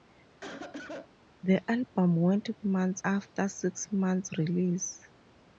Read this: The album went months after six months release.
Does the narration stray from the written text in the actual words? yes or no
no